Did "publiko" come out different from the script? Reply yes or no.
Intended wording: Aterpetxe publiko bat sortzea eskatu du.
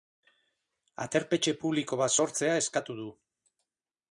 no